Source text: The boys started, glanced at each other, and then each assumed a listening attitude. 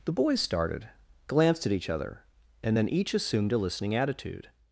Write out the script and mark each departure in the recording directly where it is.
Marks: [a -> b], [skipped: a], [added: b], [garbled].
The boys started, glanced at each other, and then each assumed a listening attitude.